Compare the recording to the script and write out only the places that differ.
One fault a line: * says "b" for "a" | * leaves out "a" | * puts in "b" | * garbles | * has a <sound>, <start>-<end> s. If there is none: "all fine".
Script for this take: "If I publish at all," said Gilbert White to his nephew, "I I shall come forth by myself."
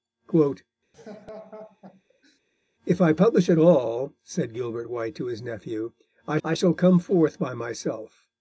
* has a laugh, 0.9-2.4 s